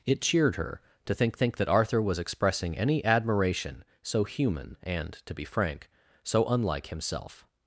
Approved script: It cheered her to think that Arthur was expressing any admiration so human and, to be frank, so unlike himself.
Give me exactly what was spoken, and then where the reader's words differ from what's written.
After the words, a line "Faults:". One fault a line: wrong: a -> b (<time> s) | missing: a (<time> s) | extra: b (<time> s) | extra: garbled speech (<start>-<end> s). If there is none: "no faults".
It cheered her to think think that Arthur was expressing any admiration so human and, to be frank, so unlike himself.
Faults:
extra: think (1.3 s)